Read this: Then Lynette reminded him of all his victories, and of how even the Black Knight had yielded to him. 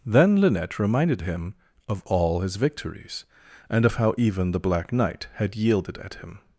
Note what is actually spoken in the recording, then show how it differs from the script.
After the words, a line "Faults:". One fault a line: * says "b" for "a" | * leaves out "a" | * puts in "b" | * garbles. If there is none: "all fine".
Then Lynette reminded him of all his victories, and of how even the Black Knight had yielded at him.
Faults:
* says "at" for "to"